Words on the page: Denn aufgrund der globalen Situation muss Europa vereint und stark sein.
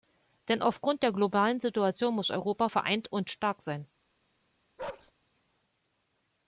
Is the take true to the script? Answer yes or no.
yes